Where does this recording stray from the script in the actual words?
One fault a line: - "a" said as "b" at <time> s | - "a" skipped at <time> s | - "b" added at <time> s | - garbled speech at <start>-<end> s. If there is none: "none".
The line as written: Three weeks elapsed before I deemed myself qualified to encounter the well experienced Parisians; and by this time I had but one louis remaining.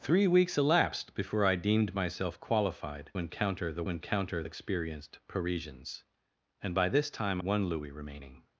- "to" skipped at 3.1 s
- "well" said as "encounter" at 3.9 s
- "I had but" skipped at 7.4 s